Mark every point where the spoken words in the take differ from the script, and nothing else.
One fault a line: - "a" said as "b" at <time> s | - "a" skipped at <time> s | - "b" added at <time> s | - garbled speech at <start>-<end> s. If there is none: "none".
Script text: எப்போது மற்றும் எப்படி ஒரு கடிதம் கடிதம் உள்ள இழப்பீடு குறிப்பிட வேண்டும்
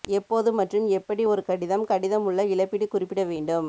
none